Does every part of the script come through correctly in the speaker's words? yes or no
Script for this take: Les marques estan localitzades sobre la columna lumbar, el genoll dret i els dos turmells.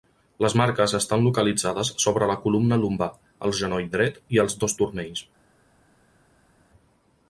yes